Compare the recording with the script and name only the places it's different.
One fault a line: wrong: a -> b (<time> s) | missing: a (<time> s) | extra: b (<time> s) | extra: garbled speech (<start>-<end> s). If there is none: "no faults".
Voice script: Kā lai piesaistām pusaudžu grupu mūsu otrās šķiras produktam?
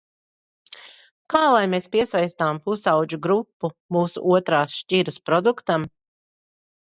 extra: mēs (1.7 s)